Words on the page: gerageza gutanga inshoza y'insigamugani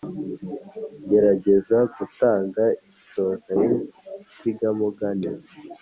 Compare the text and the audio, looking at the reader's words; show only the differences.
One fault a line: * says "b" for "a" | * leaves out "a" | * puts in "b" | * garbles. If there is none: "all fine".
all fine